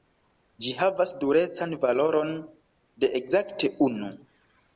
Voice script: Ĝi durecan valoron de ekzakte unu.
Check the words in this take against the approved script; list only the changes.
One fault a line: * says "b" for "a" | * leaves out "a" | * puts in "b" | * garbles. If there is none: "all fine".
* puts in "havas"